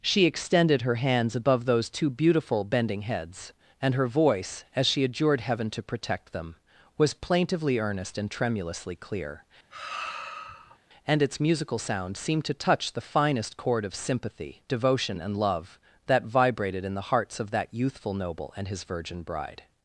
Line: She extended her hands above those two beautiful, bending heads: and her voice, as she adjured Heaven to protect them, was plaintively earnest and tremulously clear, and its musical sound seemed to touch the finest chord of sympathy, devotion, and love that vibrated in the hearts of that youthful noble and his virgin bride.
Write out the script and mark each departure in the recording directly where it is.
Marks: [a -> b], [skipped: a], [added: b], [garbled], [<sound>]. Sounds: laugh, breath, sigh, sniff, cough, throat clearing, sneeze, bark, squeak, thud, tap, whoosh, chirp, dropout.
She extended her hands above those two beautiful, bending heads: and her voice, as she adjured Heaven to protect them, was plaintively earnest and tremulously clear, [sigh] and its musical sound seemed to touch the finest chord of sympathy, devotion, and love that vibrated in the hearts of that youthful noble and his virgin bride.